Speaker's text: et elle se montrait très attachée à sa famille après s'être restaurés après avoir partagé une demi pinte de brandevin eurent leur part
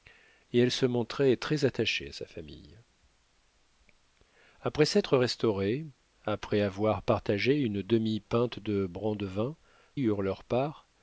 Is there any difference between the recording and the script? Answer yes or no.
no